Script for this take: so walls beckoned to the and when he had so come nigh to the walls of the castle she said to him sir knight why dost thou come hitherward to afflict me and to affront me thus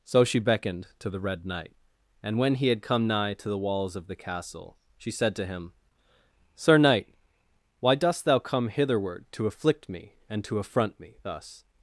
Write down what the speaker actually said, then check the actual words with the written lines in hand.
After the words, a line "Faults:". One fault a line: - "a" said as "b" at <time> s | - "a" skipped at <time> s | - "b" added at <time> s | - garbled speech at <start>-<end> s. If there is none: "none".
so she beckoned to the red knight and when he had come nigh to the walls of the castle she said to him sir knight why dost thou come hitherward to afflict me and to affront me thus
Faults:
- "walls" said as "she" at 0.2 s
- "red knight" added at 1.2 s
- "so" skipped at 2.8 s